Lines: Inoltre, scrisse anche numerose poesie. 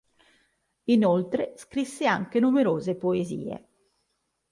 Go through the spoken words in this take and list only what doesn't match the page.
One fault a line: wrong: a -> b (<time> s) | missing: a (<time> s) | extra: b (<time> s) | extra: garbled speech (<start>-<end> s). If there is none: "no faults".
no faults